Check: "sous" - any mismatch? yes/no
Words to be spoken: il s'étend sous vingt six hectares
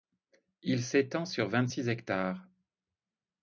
yes